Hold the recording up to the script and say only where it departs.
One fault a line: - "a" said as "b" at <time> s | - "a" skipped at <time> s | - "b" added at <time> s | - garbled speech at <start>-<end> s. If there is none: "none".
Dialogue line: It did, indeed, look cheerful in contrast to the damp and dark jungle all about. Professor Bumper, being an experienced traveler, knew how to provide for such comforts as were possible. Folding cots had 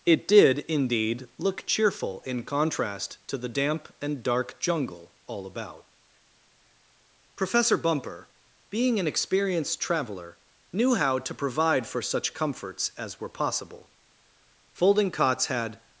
none